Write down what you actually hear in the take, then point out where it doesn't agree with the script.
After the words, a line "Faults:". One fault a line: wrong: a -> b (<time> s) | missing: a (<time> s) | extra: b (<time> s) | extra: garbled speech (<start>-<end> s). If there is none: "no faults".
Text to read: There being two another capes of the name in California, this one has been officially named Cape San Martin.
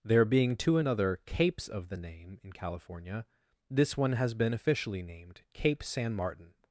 There being two another capes of the name in California, this one has been officially named Cape San Martin.
Faults:
no faults